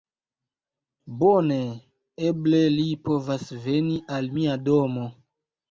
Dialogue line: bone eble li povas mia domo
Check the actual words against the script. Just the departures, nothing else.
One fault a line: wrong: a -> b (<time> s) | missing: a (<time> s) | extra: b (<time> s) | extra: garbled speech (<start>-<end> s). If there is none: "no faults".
extra: veni al (3.7 s)